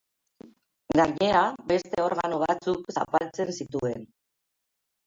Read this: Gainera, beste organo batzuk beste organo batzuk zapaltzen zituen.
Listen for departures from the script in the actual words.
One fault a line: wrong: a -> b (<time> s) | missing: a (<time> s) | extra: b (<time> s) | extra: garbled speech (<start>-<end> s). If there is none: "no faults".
missing: beste organo batzuk (2.9 s)